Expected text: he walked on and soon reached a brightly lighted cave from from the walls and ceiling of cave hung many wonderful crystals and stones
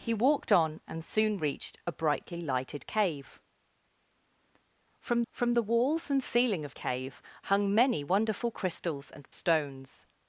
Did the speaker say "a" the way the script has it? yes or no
yes